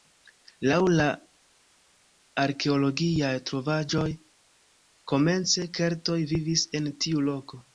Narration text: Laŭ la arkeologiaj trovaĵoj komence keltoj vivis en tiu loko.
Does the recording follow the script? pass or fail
pass